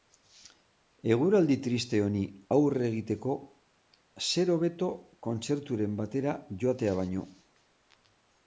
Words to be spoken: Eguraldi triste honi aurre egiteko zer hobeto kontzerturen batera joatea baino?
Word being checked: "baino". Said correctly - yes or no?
yes